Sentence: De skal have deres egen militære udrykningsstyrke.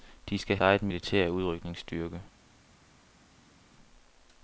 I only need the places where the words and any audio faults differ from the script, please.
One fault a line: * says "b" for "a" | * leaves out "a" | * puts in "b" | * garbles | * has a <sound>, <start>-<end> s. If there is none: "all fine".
* leaves out "have deres"